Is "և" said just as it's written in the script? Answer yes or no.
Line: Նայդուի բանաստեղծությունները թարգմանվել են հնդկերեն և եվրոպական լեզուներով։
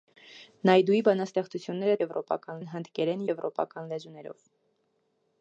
no